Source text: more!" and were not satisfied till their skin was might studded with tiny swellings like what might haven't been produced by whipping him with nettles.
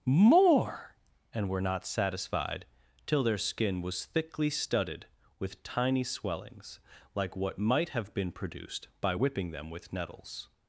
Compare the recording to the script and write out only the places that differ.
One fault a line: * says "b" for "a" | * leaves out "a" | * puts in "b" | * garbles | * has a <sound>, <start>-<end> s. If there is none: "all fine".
* says "thickly" for "might"
* says "have" for "haven't"
* says "them" for "him"